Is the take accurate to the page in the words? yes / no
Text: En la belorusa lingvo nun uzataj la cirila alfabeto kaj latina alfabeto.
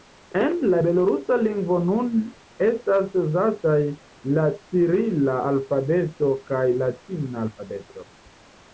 no